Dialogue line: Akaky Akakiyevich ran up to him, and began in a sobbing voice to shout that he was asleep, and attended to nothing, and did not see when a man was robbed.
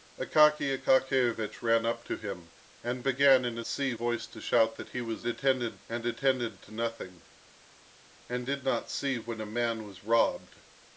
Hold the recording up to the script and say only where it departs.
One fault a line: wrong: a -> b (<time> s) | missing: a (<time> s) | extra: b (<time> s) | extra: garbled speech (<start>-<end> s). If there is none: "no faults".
wrong: sobbing -> see (3.7 s)
wrong: asleep -> attended (5.3 s)